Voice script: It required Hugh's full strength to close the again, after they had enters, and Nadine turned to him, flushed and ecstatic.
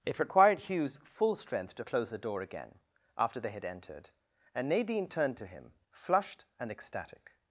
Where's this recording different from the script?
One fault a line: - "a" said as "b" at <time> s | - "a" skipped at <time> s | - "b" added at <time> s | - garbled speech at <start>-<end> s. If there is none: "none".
- "door" added at 2.2 s
- "enters" said as "entered" at 3.6 s